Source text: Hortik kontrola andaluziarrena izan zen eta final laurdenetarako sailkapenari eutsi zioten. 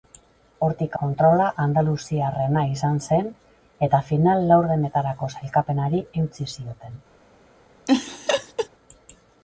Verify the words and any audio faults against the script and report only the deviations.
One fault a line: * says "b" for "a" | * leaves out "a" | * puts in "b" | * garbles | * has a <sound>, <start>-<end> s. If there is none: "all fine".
* has a laugh, 7.9-8.7 s